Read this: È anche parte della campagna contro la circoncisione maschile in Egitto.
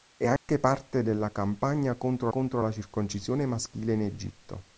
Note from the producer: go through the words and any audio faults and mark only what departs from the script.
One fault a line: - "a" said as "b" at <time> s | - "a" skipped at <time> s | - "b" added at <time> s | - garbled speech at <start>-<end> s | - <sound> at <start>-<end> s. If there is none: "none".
- dropout at 0.4-0.5 s
- "contro" added at 2.3 s